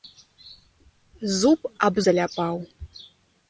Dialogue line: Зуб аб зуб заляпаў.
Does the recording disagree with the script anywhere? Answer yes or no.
yes